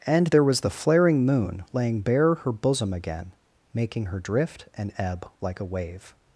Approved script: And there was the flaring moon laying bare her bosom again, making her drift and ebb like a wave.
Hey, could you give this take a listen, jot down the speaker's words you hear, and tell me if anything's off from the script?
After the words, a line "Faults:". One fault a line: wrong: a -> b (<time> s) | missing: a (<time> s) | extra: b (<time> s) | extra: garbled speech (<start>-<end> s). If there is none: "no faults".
And there was the flaring moon laying bare her bosom again, making her drift and ebb like a wave.
Faults:
no faults